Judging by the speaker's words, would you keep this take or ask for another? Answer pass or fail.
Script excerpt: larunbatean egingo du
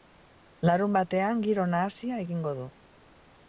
fail